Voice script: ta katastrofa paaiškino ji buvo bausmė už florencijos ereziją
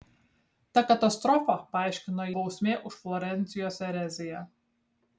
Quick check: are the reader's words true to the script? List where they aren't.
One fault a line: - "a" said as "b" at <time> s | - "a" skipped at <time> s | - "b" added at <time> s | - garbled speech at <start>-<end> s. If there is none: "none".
- "ji buvo" skipped at 2.3 s